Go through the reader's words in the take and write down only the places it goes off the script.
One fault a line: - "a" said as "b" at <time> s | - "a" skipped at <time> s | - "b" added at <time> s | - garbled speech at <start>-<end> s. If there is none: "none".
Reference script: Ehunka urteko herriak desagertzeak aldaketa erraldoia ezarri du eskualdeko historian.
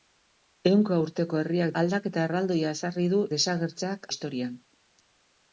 - "desagertzeak" skipped at 1.7 s
- "eskualdeko" said as "desagertzeak" at 3.3 s